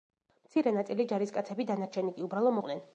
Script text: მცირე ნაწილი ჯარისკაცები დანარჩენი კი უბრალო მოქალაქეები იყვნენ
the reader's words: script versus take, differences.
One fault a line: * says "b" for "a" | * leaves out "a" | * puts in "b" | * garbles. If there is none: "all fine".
* leaves out "მოქალაქეები"